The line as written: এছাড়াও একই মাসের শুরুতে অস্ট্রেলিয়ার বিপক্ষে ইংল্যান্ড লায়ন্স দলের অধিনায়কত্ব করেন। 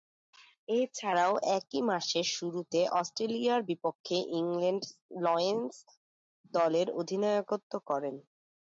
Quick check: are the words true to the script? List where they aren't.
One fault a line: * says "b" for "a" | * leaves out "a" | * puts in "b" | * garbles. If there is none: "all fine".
all fine